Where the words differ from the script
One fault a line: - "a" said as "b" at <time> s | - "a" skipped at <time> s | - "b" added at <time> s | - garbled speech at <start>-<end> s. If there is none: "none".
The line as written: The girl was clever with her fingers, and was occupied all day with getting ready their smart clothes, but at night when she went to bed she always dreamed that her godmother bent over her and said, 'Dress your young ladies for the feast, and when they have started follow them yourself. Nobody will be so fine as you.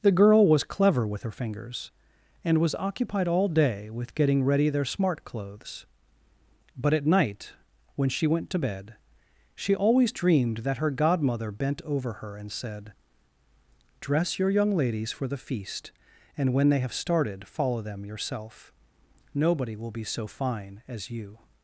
none